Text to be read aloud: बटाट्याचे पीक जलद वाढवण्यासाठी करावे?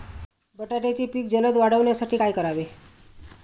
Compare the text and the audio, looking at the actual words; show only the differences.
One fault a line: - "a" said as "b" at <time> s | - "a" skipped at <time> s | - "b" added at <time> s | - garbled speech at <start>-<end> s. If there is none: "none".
- "काय" added at 2.1 s